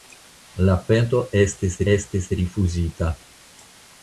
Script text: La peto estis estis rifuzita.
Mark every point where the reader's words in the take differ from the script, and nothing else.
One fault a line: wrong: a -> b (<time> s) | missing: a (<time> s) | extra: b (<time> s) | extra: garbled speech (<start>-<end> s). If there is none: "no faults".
no faults